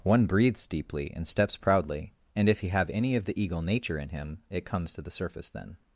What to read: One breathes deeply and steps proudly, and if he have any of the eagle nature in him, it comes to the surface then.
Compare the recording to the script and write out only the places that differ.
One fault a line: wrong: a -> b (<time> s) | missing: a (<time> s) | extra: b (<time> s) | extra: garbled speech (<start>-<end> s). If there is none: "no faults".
no faults